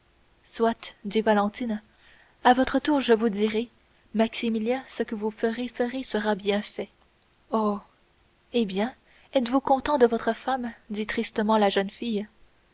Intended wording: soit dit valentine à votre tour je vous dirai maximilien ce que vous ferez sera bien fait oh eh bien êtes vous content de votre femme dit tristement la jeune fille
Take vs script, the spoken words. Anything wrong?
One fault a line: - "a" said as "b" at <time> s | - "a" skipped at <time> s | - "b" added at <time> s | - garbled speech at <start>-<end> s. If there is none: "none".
- "ferez" added at 5.7 s